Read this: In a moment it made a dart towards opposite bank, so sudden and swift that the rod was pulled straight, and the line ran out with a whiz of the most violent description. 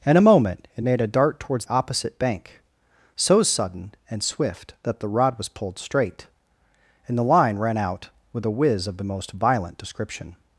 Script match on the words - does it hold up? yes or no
yes